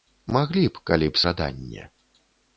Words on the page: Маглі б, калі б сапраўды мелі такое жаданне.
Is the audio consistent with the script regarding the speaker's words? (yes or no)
no